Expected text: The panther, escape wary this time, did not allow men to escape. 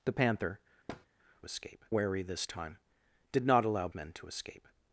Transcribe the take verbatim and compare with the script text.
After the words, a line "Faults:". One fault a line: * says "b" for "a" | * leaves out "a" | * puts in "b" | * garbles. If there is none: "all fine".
The panther, escape wary this time, did not allow men to escape.
Faults:
all fine